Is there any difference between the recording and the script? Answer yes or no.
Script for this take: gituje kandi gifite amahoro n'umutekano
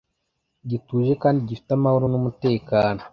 no